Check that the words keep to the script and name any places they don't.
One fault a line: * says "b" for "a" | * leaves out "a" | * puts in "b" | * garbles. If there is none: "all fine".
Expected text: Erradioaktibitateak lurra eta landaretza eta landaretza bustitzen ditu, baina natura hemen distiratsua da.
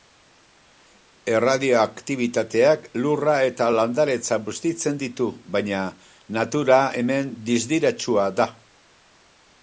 * leaves out "eta landaretza"